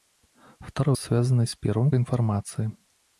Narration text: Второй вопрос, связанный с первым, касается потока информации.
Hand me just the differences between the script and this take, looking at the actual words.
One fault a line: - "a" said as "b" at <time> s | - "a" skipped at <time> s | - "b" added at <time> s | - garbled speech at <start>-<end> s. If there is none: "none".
- "вопрос" skipped at 0.9 s
- "касается потока" skipped at 1.9 s